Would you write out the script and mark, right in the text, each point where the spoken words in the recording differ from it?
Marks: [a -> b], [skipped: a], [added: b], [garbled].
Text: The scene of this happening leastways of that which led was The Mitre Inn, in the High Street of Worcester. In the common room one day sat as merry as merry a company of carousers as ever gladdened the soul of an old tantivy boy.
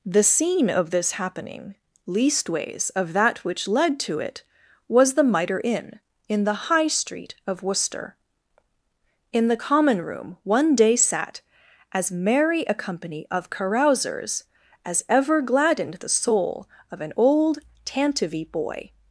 The scene of this happening leastways of that which led [added: to it] was The Mitre Inn, in the High Street of Worcester. In the common room one day sat as merry [skipped: as merry] a company of carousers as ever gladdened the soul of an old tantivy boy.